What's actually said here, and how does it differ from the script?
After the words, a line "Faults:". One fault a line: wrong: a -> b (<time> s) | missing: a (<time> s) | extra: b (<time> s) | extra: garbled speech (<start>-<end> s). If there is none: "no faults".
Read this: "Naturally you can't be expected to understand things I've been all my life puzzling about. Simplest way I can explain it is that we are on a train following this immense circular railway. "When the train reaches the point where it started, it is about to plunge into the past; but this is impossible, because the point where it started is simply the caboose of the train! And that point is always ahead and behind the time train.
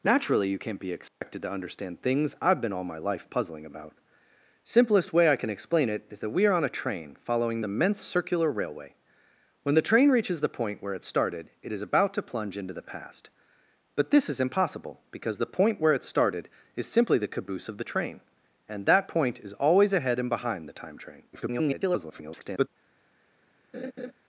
"Naturally you can't be expected to understand things I've been all my life puzzling about. Simplest way I can explain it is that we are on a train following immense circular railway. "When the train reaches the point where it started, it is about to plunge into the past; but this is impossible, because the point where it started is simply the caboose of the train! And that point is always ahead and behind the time train. [garbled]
Faults:
missing: this (7.6 s)
extra: garbled speech (21.3-22.7 s)